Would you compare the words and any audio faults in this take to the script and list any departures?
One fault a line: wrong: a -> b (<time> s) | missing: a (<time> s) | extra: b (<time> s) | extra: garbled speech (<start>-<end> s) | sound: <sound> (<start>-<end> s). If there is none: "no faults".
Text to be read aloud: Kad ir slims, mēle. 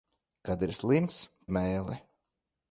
no faults